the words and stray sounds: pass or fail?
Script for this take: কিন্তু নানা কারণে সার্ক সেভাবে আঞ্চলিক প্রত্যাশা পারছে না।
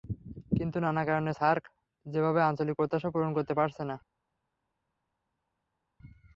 fail